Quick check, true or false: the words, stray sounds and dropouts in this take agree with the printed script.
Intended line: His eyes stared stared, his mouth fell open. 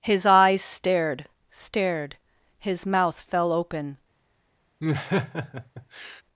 false